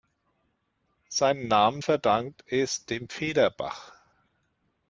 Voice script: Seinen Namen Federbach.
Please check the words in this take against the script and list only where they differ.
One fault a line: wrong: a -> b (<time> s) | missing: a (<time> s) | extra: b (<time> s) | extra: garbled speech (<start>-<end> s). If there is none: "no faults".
extra: verdankt es dem (1.8 s)